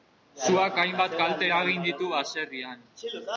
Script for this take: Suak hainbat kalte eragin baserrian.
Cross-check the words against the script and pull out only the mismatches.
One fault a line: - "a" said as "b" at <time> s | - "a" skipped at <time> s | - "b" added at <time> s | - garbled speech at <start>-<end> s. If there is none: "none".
- "ditu" added at 1.9 s